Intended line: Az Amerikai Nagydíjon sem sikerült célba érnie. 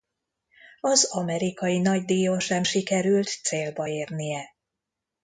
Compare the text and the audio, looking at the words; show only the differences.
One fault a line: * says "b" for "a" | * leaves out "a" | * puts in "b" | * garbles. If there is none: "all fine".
all fine